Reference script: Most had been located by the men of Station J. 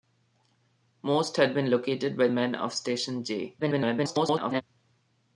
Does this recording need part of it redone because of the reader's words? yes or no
yes